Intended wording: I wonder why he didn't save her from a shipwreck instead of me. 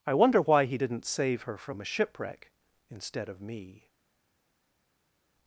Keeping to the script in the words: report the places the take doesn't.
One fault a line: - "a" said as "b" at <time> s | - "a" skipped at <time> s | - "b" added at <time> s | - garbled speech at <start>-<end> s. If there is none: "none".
none